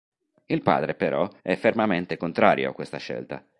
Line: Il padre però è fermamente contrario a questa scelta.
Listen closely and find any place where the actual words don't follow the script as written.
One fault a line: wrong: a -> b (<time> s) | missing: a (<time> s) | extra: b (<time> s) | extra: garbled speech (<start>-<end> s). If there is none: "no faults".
no faults